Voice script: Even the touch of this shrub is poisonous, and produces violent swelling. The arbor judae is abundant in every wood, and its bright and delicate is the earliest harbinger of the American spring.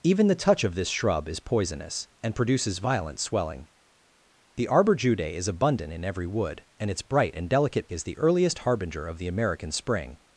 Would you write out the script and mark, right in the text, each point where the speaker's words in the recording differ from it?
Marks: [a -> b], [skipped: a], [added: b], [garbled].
Even the touch of this shrub is poisonous, and produces violent swelling. The arbor judae is abundant in every wood, and its bright and delicate is the earliest harbinger of the American spring.